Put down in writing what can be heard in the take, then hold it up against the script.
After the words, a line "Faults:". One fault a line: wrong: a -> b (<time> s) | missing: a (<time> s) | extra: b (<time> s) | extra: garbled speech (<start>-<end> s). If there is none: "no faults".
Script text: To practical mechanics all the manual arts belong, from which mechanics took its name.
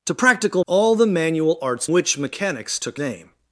To practical all the manual arts which mechanics took name.
Faults:
missing: mechanics (0.6 s)
missing: belong from (1.9 s)
missing: its (3.0 s)